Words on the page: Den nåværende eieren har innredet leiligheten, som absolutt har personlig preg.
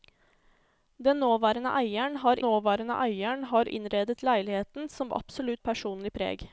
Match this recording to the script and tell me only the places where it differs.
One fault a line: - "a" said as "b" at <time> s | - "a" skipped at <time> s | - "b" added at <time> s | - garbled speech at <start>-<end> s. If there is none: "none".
- "nåværende eieren har" added at 2.4 s
- "har" skipped at 5.6 s